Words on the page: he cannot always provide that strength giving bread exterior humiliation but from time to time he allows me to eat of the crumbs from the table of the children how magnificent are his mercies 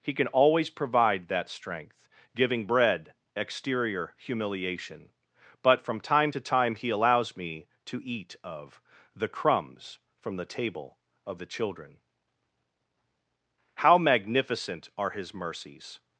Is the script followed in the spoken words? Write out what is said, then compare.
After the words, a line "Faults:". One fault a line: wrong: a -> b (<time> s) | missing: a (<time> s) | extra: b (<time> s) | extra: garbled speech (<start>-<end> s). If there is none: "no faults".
he can always provide that strength giving bread exterior humiliation but from time to time he allows me to eat of the crumbs from the table of the children how magnificent are his mercies
Faults:
wrong: cannot -> can (0.1 s)